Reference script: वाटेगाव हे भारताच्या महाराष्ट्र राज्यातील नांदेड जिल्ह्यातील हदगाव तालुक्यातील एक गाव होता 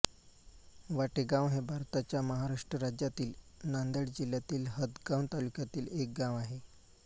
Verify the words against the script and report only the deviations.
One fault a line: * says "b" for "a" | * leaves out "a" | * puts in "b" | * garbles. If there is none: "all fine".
* says "आहे" for "होता"